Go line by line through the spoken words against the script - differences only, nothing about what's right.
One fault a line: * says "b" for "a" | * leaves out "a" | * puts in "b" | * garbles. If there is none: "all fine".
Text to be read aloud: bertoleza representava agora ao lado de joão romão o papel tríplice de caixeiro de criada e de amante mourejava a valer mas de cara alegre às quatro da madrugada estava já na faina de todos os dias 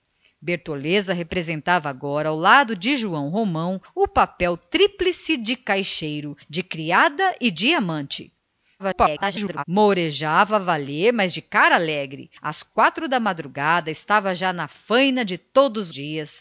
* garbles
* leaves out "os"